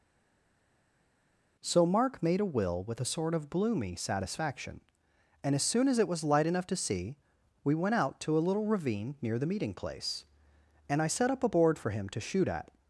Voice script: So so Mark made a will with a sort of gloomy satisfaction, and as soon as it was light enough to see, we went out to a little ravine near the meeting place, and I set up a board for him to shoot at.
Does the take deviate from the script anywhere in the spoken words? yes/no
yes